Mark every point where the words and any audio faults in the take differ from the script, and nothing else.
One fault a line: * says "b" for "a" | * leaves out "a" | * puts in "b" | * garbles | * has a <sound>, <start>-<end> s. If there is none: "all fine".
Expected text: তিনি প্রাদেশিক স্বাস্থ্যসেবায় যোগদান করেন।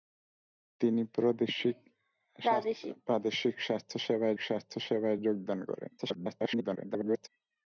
* puts in "স্বাস্থ্যসেবায়"
* garbles